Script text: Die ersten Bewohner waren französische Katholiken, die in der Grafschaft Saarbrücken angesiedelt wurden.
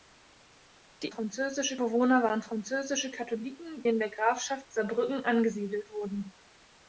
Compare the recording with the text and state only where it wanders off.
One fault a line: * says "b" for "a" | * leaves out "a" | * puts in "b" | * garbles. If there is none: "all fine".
* says "französische" for "ersten"
* leaves out "die"